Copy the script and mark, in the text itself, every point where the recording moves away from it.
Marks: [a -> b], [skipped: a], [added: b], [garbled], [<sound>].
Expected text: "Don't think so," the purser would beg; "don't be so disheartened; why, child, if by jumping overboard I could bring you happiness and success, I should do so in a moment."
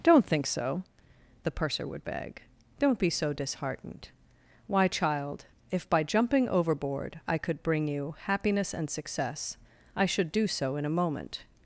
"Don't think so," the purser would beg; "don't be so disheartened; why, child, if by jumping overboard I could bring you happiness and success, I should do so in a moment."